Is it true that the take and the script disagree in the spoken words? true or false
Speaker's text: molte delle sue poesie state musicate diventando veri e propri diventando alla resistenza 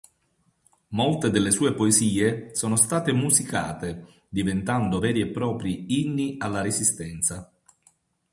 true